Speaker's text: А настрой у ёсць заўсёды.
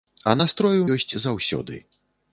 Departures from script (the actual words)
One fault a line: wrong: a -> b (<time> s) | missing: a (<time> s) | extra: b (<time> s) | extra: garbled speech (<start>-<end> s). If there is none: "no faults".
no faults